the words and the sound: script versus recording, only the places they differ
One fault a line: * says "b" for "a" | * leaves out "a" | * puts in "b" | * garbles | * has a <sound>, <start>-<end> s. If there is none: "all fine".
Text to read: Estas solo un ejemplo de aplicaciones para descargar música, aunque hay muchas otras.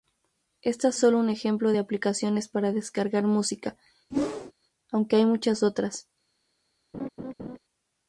* has a whoosh, 4.1-4.5 s
* has a laugh, 6.9-7.6 s